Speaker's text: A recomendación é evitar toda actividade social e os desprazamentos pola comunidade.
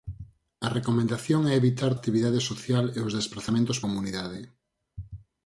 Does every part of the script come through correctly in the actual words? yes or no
no